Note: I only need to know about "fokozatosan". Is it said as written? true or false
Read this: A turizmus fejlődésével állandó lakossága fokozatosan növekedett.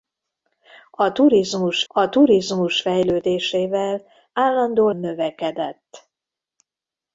false